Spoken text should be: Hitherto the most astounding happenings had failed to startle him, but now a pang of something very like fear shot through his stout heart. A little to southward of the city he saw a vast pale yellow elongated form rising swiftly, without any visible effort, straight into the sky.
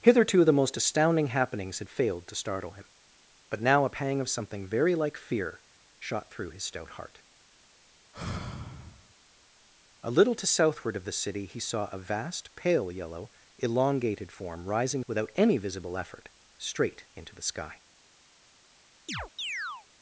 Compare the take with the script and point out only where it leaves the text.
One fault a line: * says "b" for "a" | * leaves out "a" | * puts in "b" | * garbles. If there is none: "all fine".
* leaves out "swiftly"